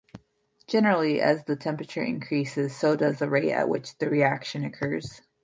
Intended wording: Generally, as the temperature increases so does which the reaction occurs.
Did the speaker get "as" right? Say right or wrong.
right